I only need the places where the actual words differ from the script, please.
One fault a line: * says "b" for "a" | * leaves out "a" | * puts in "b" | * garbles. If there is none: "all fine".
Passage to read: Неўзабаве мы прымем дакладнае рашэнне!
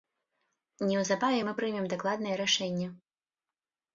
all fine